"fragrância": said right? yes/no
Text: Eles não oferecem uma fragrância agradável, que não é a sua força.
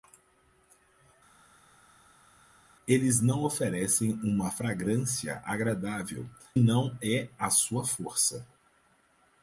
yes